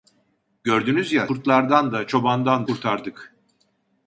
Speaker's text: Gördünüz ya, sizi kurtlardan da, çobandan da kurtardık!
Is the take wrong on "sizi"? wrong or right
wrong